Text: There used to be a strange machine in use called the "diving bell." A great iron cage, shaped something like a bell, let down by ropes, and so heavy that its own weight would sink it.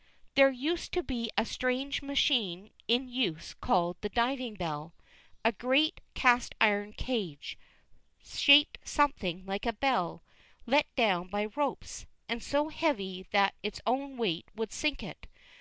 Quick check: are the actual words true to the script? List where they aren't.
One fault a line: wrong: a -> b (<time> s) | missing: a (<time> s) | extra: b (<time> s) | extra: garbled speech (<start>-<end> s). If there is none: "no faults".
extra: cast (6.1 s)